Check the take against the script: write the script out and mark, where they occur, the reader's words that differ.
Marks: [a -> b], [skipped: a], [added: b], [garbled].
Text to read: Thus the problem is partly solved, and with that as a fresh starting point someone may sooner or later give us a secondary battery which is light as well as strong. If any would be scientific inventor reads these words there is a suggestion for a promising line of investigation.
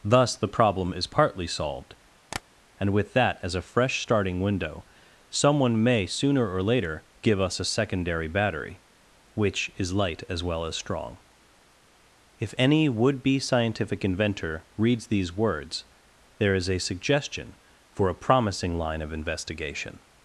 Thus the problem is partly solved, and with that as a fresh starting [point -> window] someone may sooner or later give us a secondary battery which is light as well as strong. If any would be scientific inventor reads these words there is a suggestion for a promising line of investigation.